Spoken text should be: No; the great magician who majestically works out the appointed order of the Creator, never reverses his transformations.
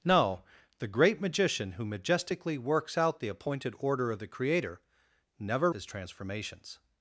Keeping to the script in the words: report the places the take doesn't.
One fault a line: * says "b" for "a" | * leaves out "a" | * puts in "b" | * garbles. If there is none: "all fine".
* leaves out "reverses"